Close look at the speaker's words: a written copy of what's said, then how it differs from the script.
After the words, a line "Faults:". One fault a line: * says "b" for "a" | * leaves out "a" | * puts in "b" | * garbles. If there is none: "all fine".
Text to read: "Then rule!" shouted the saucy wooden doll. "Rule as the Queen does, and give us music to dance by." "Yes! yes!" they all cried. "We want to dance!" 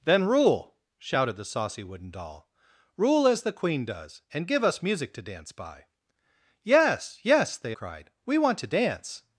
"Then rule!" shouted the saucy wooden doll. "Rule as the Queen does, and give us music to dance by." "Yes! yes!" they cried. "We want to dance!"
Faults:
* leaves out "all"